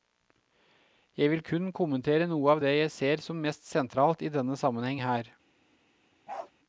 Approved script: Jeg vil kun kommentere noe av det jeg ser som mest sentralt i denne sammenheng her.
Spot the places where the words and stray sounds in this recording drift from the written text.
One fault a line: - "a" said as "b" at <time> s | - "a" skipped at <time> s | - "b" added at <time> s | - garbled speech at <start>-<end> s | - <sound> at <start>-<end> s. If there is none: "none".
- bark at 6.3-6.5 s